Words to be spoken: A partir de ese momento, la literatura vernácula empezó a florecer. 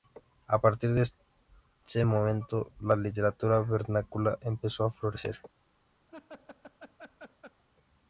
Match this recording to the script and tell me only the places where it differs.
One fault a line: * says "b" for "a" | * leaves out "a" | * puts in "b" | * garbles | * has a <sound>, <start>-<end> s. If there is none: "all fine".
* has a laugh, 6.1-7.6 s